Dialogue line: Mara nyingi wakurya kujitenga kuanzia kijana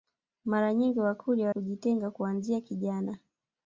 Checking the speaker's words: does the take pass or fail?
pass